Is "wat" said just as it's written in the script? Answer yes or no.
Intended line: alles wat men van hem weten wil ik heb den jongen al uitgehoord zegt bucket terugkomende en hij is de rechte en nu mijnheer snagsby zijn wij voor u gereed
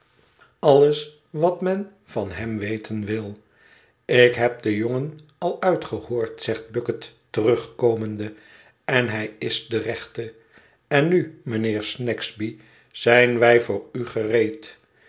yes